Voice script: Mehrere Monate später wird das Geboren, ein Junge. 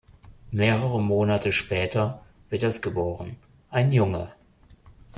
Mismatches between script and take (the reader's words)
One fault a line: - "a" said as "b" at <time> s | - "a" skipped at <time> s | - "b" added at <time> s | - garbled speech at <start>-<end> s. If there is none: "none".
none